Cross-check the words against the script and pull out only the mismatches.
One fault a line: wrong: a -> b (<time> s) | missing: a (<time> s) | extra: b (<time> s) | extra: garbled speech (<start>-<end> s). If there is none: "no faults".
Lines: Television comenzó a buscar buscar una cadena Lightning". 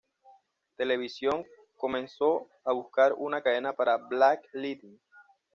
missing: buscar (3.1 s)
extra: para Black (3.7 s)